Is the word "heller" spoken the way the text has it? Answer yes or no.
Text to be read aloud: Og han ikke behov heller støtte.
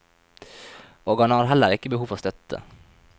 no